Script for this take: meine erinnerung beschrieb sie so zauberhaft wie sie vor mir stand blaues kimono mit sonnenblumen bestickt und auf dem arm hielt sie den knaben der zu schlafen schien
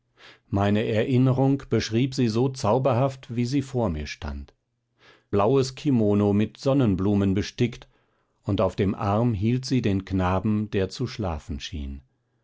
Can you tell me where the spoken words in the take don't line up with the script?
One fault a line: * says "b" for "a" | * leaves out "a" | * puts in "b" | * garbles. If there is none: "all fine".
all fine